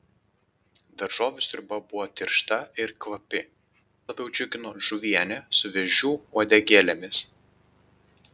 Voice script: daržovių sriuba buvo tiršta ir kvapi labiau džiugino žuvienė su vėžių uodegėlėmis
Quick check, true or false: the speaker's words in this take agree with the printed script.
true